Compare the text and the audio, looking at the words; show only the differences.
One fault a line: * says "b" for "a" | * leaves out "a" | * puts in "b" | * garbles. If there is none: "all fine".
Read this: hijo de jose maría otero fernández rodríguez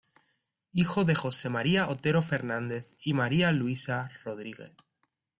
* puts in "y maría luisa"